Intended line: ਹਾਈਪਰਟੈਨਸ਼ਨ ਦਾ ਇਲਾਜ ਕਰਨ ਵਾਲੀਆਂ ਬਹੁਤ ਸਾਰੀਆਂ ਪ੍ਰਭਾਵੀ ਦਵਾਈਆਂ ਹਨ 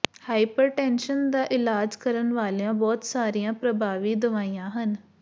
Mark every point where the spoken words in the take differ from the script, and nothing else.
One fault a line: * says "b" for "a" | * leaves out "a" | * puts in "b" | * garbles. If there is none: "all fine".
all fine